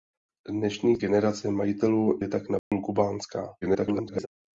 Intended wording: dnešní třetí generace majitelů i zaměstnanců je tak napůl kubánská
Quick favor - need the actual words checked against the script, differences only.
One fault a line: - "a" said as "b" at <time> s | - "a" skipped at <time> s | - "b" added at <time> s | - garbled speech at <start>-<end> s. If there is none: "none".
- "třetí" skipped at 1.0 s
- "i zaměstnanců" skipped at 2.2 s
- garbled speech at 3.6-4.3 s